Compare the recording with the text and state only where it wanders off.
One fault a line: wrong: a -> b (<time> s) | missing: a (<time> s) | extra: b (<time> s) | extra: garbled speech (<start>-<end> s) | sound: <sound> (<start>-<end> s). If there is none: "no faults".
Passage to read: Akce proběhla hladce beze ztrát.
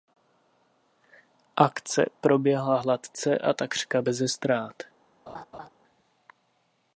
extra: a takřka (3.4 s)
sound: laugh (5.3-5.7 s)